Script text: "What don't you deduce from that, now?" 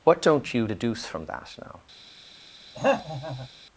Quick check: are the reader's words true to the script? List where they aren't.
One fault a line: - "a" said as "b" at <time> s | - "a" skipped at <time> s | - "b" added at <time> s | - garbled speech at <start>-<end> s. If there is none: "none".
none